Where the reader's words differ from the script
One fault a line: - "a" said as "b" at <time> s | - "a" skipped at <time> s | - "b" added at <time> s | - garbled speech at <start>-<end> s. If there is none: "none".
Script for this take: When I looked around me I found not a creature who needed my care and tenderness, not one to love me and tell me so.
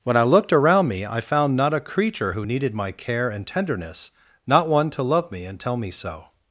none